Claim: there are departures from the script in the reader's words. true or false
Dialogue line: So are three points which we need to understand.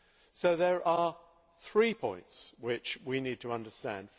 true